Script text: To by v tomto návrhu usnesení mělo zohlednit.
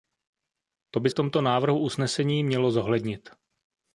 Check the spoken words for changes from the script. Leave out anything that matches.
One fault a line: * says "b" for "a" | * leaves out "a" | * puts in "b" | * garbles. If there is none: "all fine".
all fine